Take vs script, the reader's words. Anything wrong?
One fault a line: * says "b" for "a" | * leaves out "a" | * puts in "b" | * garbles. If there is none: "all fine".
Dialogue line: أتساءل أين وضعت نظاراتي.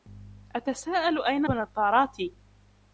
* leaves out "وضعت"